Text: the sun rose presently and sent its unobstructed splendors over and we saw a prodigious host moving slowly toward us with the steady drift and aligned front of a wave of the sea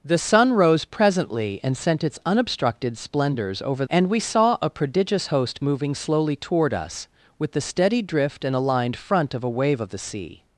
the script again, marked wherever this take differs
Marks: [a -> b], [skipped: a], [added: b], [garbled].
the sun rose presently and sent its unobstructed splendors over and we saw a prodigious host moving slowly toward us with the steady drift and aligned front of a wave of the sea